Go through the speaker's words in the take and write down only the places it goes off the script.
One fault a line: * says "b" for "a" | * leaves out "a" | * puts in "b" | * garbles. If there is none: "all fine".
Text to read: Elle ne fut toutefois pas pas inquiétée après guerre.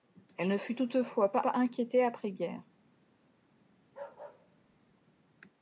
all fine